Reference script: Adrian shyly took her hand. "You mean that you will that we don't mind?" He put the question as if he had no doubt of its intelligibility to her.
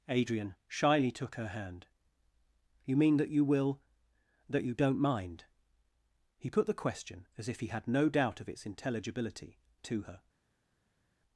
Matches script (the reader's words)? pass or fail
fail